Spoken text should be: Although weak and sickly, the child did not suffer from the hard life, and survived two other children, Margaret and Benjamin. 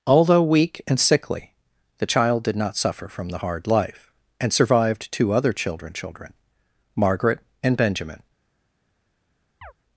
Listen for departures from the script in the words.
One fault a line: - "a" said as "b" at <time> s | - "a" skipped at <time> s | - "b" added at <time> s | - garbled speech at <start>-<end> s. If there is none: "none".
- "children" added at 5.9 s